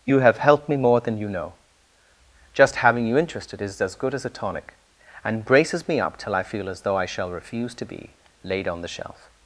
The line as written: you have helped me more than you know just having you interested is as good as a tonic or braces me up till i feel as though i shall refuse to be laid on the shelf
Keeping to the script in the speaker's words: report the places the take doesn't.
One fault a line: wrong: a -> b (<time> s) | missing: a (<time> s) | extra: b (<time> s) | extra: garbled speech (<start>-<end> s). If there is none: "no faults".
wrong: or -> and (5.2 s)